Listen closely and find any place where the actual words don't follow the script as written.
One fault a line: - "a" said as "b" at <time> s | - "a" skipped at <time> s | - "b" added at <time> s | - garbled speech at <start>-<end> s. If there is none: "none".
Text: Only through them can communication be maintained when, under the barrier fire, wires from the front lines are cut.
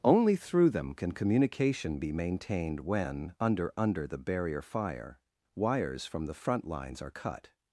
- "under" added at 3.8 s